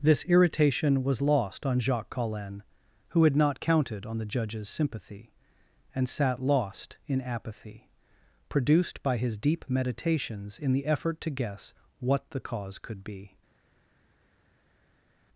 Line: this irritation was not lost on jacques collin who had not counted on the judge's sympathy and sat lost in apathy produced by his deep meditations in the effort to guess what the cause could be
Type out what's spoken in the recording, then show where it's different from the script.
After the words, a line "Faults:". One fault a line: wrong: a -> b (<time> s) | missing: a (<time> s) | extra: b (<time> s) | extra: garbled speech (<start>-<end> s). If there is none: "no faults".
this irritation was lost on jacques collin who had not counted on the judge's sympathy and sat lost in apathy produced by his deep meditations in the effort to guess what the cause could be
Faults:
missing: not (1.2 s)